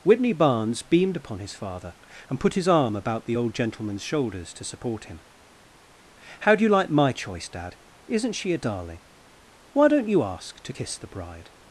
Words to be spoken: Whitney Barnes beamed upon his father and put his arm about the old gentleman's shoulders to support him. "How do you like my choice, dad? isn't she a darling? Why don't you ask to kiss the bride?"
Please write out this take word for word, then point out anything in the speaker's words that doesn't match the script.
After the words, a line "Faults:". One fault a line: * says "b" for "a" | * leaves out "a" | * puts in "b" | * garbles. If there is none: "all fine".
Whitney Barnes beamed upon his father and put his arm about the old gentleman's shoulders to support him. "How do you like my choice, dad? isn't she a darling? Why don't you ask to kiss the bride?"
Faults:
all fine